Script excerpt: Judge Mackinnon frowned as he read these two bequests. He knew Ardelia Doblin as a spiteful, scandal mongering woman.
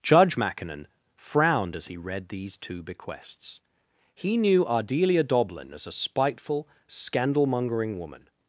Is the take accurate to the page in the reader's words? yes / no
yes